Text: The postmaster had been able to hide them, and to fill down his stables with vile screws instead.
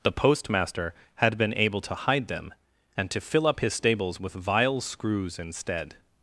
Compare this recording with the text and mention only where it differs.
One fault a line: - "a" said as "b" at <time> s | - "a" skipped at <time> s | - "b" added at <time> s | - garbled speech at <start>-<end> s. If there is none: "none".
- "down" said as "up" at 3.5 s